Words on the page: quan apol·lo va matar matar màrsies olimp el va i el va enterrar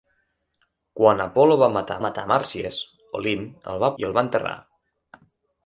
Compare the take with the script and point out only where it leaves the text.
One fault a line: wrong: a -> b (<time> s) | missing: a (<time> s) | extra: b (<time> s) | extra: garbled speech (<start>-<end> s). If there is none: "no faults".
no faults